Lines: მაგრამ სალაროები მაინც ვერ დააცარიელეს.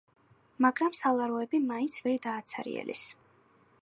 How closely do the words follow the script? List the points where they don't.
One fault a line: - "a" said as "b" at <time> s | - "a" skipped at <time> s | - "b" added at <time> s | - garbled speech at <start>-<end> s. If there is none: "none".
none